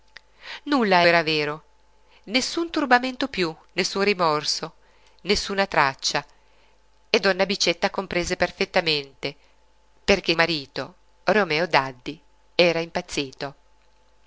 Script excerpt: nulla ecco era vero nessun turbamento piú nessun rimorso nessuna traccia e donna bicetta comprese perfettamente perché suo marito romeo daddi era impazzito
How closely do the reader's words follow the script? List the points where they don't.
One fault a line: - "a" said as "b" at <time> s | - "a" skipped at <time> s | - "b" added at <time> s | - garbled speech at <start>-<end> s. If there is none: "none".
- "ecco" skipped at 1.1 s
- "suo" skipped at 10.3 s